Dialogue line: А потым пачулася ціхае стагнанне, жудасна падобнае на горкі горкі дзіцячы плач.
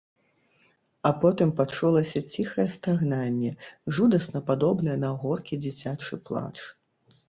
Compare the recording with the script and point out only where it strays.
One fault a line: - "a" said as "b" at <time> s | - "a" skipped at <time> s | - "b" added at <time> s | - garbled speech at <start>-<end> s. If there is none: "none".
- "горкі" skipped at 5.6 s